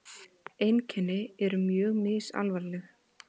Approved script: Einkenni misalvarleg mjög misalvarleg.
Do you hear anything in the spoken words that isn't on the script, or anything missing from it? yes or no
yes